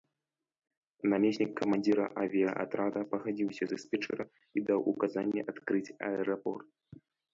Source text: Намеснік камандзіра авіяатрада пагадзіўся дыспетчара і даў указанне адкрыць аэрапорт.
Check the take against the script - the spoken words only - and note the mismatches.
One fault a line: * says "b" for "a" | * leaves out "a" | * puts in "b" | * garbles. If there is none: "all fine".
all fine